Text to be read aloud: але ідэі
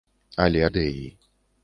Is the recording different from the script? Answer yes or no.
no